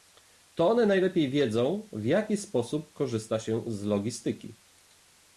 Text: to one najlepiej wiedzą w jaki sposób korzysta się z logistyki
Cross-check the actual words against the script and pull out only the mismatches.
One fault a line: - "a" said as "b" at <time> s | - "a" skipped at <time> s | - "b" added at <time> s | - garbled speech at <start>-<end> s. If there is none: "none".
none